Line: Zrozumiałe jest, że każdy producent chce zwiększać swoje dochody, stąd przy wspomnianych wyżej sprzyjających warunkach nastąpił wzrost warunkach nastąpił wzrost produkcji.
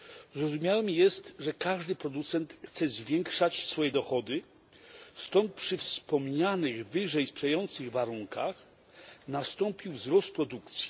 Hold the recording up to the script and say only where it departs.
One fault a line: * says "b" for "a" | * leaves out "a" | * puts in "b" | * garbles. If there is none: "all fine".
* leaves out "warunkach nastąpił wzrost"